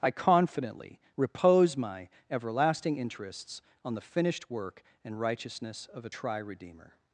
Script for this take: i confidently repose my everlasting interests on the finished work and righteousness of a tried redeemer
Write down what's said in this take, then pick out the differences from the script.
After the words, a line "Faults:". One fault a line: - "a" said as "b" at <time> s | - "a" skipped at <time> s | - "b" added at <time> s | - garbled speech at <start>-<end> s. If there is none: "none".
i confidently repose my everlasting interests on the finished work and righteousness of a tri redeemer
Faults:
- "tried" said as "tri" at 6.1 s